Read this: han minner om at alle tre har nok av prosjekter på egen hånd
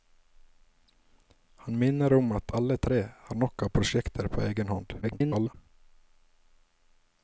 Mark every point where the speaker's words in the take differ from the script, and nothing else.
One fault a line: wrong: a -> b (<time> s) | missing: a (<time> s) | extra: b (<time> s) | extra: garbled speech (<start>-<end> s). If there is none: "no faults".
extra: garbled speech (5.0-5.5 s)